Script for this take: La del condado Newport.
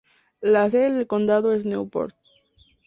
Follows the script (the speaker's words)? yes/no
no